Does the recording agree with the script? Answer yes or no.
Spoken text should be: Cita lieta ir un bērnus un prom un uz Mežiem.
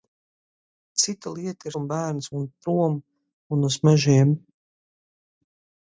yes